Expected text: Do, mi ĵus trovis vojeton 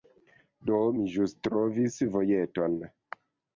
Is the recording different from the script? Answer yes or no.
no